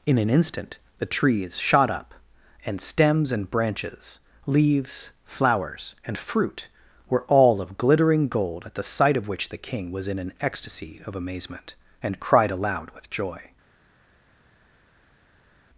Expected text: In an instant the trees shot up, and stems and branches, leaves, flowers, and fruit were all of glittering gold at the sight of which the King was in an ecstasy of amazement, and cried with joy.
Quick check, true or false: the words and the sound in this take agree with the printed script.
false